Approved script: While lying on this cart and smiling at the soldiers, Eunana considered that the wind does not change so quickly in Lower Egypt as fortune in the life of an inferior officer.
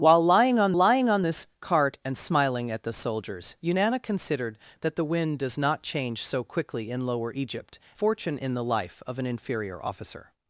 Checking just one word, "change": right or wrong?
right